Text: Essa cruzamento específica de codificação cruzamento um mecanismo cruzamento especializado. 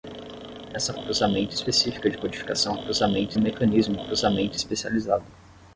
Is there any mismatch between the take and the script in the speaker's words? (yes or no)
no